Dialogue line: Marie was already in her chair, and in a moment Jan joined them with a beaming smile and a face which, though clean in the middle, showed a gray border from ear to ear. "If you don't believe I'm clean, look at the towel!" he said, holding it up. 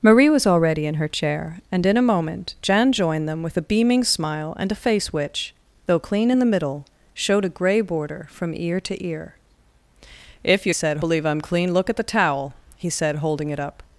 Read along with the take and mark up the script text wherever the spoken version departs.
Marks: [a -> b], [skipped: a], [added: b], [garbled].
Marie was already in her chair, and in a moment Jan joined them with a beaming smile and a face which, though clean in the middle, showed a gray border from ear to ear. "If you [don't -> said] believe I'm clean, look at the towel!" he said, holding it up.